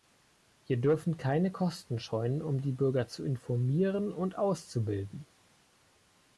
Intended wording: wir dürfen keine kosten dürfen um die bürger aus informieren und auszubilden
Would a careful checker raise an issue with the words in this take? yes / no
yes